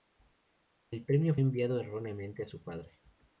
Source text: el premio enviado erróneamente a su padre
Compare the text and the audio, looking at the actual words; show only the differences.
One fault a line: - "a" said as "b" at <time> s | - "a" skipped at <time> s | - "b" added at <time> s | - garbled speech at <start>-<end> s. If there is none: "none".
none